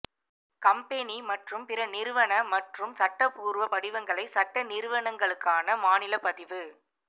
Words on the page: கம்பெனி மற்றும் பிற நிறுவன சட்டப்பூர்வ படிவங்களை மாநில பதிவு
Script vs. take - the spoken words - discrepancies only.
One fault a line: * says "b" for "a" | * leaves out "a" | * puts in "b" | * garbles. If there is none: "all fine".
* puts in "மற்றும்"
* puts in "சட்ட நிறுவனங்களுக்கான"